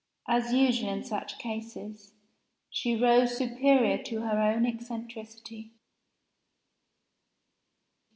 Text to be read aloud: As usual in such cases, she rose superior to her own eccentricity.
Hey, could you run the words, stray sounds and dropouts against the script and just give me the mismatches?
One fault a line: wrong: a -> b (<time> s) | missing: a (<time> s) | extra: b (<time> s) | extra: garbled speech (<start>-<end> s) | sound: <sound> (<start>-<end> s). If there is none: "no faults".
no faults